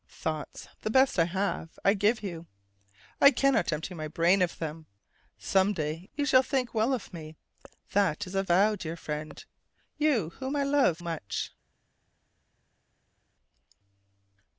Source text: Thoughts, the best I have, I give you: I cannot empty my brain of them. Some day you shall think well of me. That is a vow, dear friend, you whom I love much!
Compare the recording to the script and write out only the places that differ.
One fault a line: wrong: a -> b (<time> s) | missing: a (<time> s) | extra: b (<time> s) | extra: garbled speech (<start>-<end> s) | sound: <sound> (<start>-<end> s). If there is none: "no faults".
no faults